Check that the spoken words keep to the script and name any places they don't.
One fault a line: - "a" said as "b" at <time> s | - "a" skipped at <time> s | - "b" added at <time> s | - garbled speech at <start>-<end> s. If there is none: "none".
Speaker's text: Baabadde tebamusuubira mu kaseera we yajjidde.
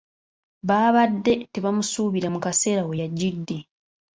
none